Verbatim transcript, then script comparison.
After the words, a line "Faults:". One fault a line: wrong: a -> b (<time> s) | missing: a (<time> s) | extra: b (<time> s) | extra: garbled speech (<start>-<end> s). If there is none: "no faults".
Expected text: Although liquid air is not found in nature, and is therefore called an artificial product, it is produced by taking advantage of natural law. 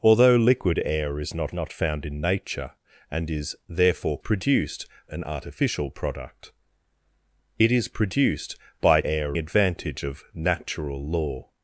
Although liquid air is not not found in nature, and is therefore produced an artificial product, it is produced by air advantage of natural law.
Faults:
extra: not (1.5 s)
wrong: called -> produced (4.2 s)
wrong: taking -> air (9.0 s)